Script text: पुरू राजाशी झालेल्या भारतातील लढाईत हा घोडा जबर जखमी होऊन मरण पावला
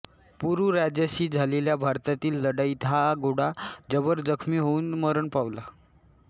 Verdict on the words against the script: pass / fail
pass